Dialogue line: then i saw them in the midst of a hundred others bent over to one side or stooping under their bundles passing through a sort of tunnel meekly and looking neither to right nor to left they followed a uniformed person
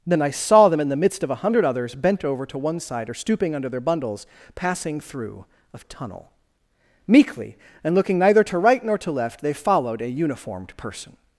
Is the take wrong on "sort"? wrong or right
wrong